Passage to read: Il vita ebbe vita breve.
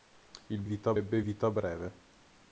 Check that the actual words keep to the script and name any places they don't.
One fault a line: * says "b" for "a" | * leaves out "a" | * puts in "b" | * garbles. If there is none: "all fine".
all fine